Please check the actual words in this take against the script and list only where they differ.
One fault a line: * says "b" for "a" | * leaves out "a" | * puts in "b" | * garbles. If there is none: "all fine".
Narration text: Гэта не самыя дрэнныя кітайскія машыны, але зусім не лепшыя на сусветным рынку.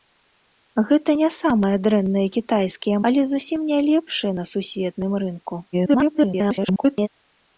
* leaves out "машыны"
* garbles